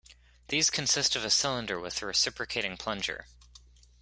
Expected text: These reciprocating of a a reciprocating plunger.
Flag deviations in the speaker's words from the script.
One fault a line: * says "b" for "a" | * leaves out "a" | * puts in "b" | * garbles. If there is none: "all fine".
* says "consist" for "reciprocating"
* puts in "cylinder with"